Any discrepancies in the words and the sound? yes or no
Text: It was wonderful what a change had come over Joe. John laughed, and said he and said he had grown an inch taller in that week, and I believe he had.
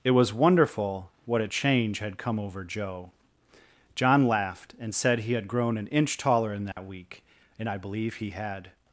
yes